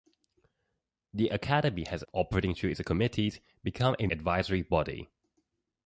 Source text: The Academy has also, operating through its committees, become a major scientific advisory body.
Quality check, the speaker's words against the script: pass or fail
fail